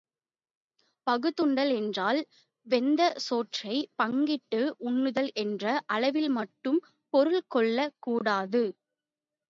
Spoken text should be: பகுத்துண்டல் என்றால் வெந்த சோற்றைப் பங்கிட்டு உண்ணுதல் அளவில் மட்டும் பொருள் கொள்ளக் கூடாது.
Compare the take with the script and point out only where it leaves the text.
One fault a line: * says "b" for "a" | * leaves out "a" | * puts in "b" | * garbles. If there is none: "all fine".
* puts in "என்ற"